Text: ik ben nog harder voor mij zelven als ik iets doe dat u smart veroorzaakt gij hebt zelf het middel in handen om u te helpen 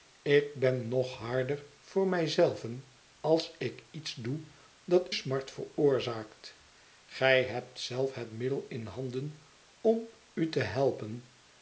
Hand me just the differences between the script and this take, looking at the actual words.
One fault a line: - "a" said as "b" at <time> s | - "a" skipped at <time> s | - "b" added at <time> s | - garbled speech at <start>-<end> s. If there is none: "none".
- "u" skipped at 5.1 s